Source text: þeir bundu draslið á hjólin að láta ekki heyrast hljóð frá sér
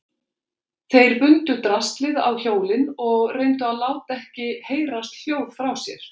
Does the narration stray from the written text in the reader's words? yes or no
yes